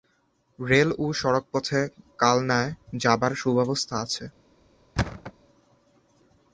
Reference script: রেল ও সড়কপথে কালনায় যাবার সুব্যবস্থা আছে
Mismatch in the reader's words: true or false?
false